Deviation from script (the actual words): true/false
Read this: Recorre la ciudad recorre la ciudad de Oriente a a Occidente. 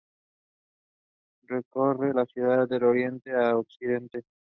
true